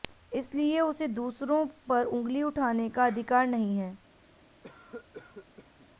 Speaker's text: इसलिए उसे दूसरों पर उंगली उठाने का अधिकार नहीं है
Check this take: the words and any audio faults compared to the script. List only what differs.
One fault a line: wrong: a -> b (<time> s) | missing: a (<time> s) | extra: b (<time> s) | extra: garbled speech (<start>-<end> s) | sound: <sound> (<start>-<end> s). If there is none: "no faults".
sound: cough (4.6-5.9 s)